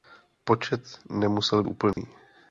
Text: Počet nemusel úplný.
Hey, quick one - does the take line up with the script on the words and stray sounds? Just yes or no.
no